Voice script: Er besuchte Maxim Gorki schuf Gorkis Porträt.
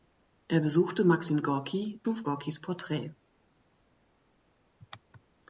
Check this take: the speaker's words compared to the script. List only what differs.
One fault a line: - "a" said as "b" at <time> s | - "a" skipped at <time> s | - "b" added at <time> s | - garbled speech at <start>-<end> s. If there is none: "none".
none